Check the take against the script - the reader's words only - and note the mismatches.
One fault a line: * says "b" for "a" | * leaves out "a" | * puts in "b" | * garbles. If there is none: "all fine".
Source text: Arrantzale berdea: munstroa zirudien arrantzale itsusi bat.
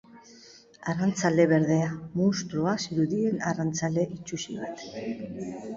all fine